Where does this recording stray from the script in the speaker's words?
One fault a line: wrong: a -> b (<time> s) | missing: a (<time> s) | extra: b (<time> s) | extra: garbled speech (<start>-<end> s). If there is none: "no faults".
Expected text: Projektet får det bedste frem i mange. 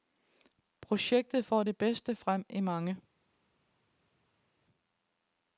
no faults